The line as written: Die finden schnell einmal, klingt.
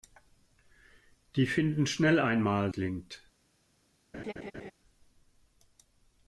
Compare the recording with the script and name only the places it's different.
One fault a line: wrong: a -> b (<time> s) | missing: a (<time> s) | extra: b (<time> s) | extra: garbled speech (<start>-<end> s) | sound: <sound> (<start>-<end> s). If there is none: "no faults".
sound: laugh (4.1-4.7 s)